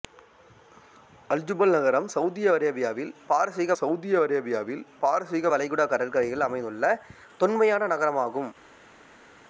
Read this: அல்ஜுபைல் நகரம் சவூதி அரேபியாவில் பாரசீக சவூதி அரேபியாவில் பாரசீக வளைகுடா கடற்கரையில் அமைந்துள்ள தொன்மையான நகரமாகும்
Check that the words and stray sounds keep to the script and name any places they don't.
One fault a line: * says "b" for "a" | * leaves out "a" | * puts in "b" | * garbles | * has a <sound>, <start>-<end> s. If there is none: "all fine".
all fine